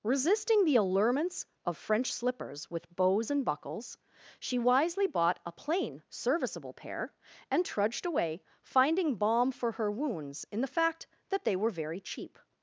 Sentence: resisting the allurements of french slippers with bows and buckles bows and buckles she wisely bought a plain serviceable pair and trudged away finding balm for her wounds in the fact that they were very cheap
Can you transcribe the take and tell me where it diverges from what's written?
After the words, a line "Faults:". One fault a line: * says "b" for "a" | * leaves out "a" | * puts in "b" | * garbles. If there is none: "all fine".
resisting the allurements of french slippers with bows and buckles she wisely bought a plain serviceable pair and trudged away finding balm for her wounds in the fact that they were very cheap
Faults:
* leaves out "bows and buckles"